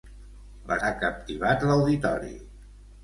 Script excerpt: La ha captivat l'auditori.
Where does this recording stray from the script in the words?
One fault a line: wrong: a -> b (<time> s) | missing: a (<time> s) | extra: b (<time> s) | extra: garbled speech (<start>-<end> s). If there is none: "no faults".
no faults